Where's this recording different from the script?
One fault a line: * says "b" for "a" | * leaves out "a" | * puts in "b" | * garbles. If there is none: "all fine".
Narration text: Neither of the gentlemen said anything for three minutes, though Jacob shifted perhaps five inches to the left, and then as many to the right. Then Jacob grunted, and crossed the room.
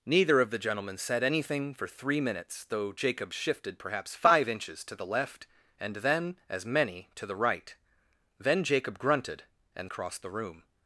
all fine